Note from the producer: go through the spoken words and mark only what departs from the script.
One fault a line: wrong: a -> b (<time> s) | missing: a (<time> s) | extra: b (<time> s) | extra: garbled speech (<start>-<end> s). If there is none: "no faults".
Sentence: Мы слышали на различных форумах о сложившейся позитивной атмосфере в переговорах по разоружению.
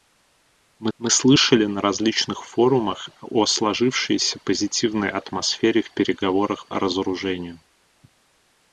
extra: мы (1.0 s)
missing: по (6.7 s)